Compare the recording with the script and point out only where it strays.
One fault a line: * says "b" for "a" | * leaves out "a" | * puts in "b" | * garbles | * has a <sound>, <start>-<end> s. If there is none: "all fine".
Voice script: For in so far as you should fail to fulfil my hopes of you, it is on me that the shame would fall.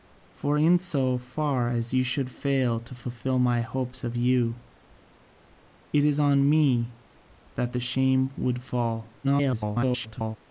* garbles